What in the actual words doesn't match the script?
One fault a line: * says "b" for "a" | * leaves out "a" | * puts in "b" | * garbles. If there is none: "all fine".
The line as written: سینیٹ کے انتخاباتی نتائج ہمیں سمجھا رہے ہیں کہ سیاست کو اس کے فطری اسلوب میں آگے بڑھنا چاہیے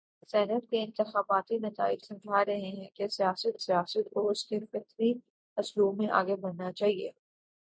* leaves out "ہمیں"
* puts in "سیاست"